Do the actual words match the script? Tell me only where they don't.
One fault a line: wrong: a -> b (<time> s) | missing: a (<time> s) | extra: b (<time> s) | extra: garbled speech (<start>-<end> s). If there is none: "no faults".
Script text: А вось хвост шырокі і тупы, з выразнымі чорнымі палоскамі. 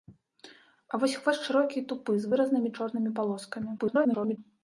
extra: garbled speech (3.8-4.4 s)